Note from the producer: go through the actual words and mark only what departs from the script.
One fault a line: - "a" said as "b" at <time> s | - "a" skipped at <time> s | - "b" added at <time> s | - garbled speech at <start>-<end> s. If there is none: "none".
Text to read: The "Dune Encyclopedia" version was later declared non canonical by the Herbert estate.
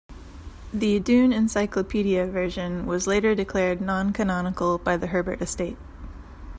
none